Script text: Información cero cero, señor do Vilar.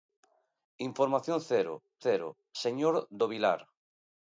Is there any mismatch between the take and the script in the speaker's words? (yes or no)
no